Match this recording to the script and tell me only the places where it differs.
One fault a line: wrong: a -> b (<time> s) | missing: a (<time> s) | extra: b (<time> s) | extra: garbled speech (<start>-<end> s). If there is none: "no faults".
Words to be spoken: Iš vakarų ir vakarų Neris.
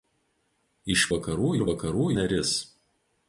no faults